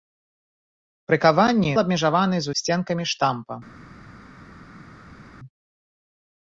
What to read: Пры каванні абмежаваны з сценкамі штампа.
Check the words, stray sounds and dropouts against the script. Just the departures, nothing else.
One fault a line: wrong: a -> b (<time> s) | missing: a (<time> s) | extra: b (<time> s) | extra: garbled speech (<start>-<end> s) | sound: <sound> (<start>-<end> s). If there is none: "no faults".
no faults